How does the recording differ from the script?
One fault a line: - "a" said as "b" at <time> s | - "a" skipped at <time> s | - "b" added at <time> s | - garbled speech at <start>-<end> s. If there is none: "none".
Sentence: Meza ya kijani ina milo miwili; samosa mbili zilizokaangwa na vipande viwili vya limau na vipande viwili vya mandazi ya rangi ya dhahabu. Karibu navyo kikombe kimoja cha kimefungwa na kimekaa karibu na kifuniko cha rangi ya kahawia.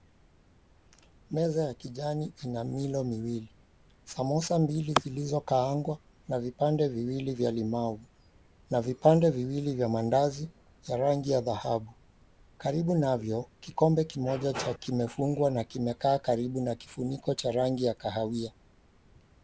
none